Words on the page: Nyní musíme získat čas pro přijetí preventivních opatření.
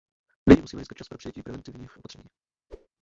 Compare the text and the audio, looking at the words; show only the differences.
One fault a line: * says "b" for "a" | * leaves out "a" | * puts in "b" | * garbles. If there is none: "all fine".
all fine